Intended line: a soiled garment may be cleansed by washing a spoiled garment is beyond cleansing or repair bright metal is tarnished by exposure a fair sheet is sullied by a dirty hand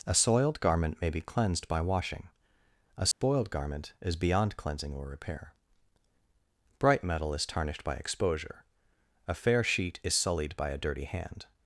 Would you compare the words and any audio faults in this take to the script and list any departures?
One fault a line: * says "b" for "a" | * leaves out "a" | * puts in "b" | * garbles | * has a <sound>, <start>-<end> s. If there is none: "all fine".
* has a dropout, 3.1-3.2 s